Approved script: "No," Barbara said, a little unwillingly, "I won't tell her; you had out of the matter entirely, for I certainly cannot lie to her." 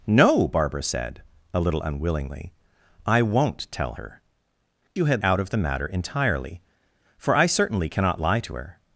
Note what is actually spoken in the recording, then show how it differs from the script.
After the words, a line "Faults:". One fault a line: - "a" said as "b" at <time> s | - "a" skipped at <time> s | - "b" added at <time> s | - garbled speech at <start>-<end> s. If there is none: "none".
"No," Barbara said, a little unwillingly, "I won't tell her; you had out of the matter entirely, for I certainly cannot lie to her."
Faults:
none